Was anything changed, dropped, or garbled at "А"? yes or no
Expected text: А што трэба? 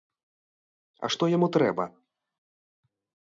no